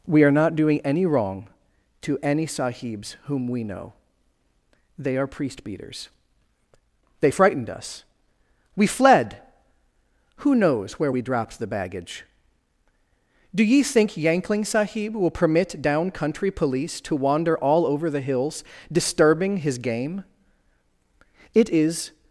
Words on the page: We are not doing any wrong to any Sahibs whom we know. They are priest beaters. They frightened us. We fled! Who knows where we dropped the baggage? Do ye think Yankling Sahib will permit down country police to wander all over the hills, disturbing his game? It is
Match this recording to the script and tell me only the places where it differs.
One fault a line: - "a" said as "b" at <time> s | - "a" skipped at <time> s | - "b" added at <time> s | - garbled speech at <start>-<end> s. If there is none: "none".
none